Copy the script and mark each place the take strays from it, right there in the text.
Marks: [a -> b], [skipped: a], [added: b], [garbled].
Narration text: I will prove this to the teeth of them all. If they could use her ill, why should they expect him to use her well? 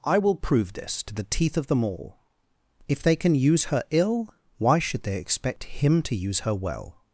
I will prove this to the teeth of them all. If they [could -> can] use her ill, why should they expect him to use her well?